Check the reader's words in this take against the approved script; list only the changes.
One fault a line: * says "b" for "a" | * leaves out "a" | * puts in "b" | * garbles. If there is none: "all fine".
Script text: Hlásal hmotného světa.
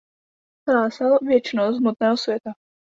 * puts in "věčnost"